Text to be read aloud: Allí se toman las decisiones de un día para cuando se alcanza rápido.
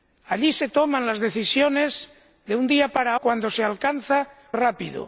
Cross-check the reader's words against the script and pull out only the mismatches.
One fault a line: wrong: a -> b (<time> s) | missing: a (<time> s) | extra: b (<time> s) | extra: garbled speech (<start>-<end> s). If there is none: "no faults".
no faults